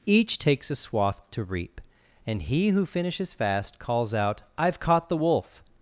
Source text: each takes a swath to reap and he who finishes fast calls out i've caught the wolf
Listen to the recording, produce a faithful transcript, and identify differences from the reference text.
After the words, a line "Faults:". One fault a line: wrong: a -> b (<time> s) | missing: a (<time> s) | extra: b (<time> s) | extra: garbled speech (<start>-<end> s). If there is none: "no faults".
each takes a swath to reap and he who finishes fast calls out i've caught the wolf
Faults:
no faults